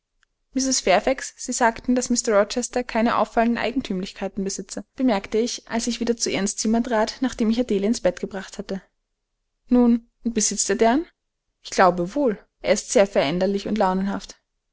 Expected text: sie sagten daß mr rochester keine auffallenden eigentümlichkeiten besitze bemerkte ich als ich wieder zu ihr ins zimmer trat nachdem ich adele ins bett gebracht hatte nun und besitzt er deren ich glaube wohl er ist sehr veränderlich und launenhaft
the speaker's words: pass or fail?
pass